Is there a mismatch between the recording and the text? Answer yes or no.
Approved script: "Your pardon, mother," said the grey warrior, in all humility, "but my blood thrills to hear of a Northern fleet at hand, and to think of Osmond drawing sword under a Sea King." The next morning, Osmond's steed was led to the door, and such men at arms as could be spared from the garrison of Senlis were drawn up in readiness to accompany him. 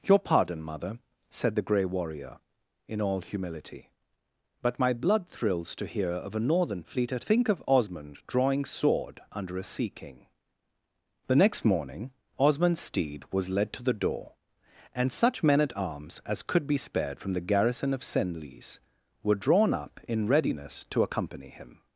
yes